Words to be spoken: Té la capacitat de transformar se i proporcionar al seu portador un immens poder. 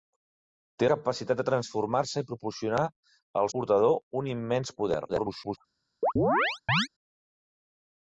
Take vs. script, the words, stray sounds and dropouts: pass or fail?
fail